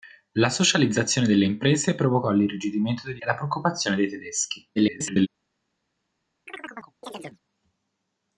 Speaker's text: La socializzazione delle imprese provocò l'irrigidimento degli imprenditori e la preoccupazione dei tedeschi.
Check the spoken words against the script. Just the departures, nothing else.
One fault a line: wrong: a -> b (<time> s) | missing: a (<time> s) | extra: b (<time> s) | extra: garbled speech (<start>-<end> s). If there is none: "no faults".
missing: imprenditori (3.2 s)
extra: garbled speech (4.8-5.3 s)